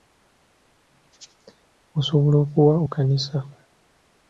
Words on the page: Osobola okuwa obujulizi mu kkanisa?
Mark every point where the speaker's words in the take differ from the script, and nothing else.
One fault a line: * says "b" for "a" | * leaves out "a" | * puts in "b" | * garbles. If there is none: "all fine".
* leaves out "obujulizi mu"